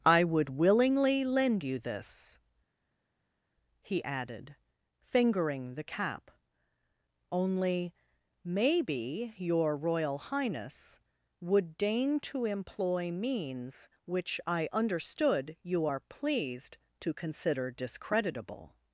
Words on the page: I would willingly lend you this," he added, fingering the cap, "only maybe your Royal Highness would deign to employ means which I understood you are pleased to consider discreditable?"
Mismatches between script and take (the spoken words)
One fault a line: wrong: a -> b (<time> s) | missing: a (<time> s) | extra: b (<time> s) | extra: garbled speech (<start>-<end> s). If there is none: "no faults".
no faults